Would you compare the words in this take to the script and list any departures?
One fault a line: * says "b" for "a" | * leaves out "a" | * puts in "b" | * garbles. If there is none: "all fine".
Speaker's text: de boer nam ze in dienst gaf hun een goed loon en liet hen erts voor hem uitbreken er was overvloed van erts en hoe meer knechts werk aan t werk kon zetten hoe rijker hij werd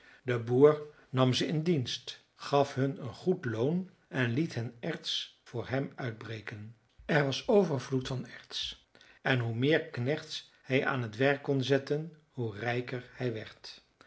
* says "hij" for "werk"